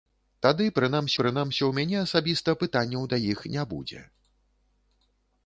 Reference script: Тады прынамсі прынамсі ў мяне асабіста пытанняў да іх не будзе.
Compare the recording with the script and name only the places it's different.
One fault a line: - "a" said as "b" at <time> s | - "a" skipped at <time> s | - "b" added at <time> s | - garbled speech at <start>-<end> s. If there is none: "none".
none